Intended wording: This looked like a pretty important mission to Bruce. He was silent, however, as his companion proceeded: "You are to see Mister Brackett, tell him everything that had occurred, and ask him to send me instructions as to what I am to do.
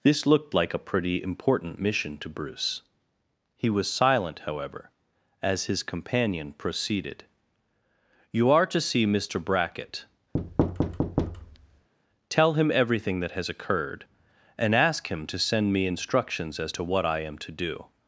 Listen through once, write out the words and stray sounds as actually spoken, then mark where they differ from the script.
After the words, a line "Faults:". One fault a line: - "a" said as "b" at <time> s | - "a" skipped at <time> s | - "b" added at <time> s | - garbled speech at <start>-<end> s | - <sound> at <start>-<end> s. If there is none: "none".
This looked like a pretty important mission to Bruce. He was silent, however, as his companion proceeded: "You are to see Mister Brackett, tell him everything that has occurred, and ask him to send me instructions as to what I am to do.
Faults:
- thud at 10.3-11.9 s
- "had" said as "has" at 13.3 s